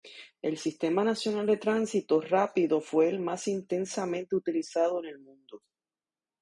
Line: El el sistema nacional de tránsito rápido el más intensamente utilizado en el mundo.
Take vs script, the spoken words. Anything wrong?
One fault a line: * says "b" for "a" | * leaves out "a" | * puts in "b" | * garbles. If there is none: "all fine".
* leaves out "el"
* puts in "fue"